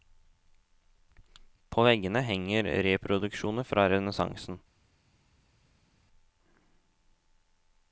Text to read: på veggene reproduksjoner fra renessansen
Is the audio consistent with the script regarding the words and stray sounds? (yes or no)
no